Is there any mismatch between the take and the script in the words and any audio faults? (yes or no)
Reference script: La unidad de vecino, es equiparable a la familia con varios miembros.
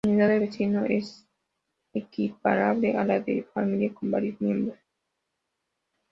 yes